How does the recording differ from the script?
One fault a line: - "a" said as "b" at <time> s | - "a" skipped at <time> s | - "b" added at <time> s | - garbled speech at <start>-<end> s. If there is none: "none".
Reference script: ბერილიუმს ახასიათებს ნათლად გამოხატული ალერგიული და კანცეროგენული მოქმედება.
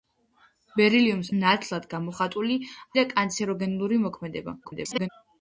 - "ახასიათებს" skipped at 1.3 s
- "ალერგიული" skipped at 2.6 s
- garbled speech at 4.6-5.1 s